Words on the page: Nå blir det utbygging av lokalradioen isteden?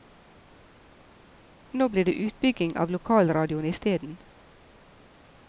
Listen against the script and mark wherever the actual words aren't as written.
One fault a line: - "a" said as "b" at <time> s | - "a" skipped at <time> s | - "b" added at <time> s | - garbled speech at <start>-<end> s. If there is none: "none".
none